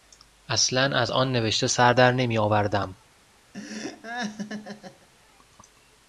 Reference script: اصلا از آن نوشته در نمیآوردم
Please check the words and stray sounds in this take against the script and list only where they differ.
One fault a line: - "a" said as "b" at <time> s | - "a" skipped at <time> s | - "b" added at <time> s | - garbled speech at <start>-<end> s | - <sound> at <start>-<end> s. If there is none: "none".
- "سر" added at 1.7 s
- laugh at 3.5-5.1 s